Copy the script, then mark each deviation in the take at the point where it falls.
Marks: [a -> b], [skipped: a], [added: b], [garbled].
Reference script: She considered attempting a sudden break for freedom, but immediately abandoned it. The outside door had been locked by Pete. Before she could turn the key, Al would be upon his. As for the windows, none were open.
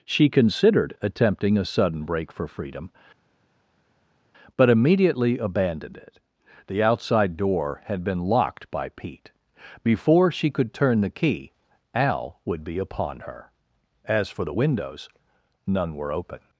She considered attempting a sudden break for freedom, but immediately abandoned it. The outside door had been locked by Pete. Before she could turn the key, Al would be upon [his. -> her] As for the windows, none were open.